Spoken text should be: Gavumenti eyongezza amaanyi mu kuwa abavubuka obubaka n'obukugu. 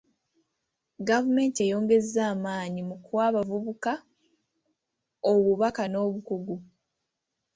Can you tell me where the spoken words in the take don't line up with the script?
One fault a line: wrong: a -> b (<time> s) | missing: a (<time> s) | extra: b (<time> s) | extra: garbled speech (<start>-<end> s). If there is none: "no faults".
no faults